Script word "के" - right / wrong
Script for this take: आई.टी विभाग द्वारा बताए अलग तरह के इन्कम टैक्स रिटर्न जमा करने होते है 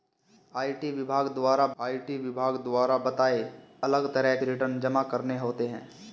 wrong